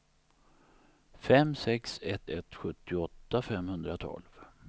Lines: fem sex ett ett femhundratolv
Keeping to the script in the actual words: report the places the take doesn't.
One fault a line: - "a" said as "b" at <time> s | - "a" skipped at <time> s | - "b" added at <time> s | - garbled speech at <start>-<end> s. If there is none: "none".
- "sjuttioåtta" added at 2.5 s